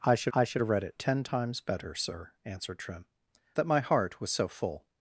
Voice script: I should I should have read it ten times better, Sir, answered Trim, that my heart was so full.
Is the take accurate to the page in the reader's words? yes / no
yes